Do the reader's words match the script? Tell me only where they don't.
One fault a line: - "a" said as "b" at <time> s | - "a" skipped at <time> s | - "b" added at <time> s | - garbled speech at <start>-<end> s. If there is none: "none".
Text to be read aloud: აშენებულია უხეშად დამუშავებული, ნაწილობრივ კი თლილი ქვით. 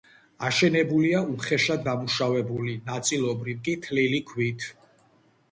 none